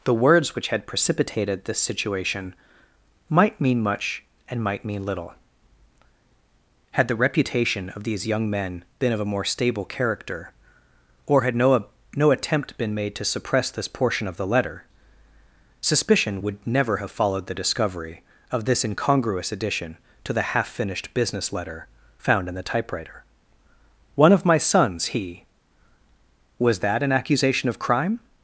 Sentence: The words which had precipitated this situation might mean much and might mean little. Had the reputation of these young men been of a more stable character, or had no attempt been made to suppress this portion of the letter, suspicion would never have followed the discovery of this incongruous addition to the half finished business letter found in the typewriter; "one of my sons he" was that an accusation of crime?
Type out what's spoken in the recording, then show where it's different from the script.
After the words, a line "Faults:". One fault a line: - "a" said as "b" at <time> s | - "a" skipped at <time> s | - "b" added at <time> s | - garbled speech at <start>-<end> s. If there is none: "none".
The words which had precipitated this situation might mean much and might mean little. Had the reputation of these young men been of a more stable character, or had no no attempt been made to suppress this portion of the letter, suspicion would never have followed the discovery of this incongruous addition to the half finished business letter found in the typewriter; "one of my sons he" was that an accusation of crime?
Faults:
- "no" added at 12.1 s